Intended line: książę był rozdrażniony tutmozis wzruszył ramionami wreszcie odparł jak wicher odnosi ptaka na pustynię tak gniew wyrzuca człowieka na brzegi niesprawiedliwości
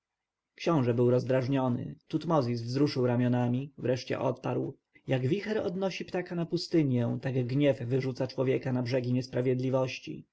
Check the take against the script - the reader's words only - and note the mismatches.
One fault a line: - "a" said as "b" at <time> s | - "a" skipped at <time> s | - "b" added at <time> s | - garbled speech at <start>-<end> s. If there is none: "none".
none